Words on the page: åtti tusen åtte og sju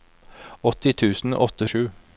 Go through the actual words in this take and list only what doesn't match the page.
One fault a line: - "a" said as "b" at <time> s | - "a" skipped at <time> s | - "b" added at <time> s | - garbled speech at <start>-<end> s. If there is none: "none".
none